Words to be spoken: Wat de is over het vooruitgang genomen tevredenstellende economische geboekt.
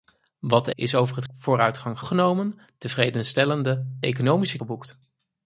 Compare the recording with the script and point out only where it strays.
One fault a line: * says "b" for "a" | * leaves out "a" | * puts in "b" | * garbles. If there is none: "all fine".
all fine